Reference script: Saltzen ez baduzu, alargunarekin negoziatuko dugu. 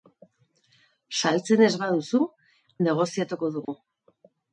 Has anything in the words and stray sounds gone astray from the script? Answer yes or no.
yes